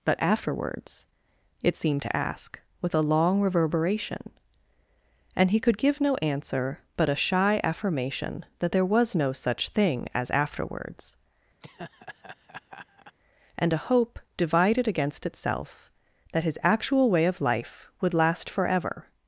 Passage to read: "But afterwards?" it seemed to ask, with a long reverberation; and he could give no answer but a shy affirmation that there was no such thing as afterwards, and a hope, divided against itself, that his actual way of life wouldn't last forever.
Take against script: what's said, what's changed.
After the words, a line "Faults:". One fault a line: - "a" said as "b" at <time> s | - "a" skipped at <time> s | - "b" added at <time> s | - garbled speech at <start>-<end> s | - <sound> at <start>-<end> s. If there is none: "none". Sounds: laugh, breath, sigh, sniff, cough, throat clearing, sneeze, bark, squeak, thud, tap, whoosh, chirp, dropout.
"But afterwards?" it seemed to ask, with a long reverberation; and he could give no answer but a shy affirmation that there was no such thing as afterwards, and a hope, divided against itself, that his actual way of life would last forever.
Faults:
- laugh at 11.6-13.1 s
- "wouldn't" said as "would" at 18.0 s